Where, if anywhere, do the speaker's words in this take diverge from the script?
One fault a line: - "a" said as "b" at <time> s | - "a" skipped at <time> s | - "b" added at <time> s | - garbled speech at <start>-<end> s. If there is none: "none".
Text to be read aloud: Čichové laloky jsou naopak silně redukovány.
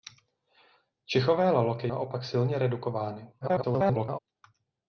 - "jsou" skipped at 1.9 s
- garbled speech at 3.4-4.2 s